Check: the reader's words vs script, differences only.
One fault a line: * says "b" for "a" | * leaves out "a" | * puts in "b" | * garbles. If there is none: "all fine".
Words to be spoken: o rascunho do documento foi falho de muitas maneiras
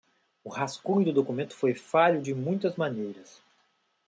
all fine